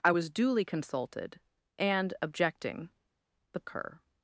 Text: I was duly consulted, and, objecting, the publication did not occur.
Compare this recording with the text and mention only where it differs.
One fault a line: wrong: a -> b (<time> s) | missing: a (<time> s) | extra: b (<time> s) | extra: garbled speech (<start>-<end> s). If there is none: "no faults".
missing: publication did not (3.6 s)